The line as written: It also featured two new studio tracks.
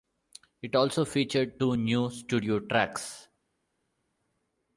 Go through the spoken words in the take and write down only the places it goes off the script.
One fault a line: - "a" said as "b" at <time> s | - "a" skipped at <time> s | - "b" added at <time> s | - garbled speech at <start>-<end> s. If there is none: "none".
none